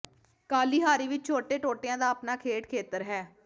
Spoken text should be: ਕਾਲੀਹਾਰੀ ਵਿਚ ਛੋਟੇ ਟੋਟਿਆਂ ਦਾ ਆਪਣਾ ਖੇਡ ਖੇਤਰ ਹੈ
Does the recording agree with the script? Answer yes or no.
yes